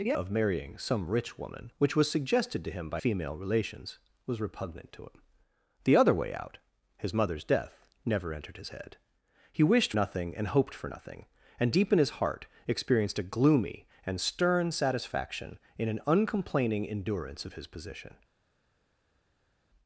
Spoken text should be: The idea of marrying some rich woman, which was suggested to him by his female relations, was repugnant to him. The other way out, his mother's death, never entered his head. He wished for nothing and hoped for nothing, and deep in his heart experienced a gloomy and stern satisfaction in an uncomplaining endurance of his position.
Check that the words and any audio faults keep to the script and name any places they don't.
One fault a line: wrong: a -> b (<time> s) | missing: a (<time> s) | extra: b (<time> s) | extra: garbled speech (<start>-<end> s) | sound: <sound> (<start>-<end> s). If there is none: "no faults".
missing: idea (0.1 s)
missing: his (3.0 s)
missing: for (9.9 s)